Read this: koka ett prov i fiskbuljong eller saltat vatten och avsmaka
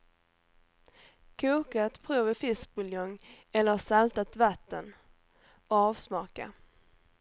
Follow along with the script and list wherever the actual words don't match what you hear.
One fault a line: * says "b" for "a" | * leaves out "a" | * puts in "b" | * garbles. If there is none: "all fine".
all fine